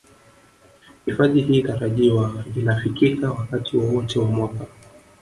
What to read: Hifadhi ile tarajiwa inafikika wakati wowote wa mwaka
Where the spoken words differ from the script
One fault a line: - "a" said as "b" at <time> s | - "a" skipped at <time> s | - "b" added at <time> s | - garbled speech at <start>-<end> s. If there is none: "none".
- "ile" said as "hii" at 1.4 s